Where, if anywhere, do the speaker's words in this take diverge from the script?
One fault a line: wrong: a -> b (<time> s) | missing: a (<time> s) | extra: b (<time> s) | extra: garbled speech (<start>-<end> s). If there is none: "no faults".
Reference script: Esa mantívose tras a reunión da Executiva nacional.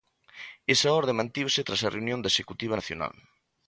extra: orde (1.0 s)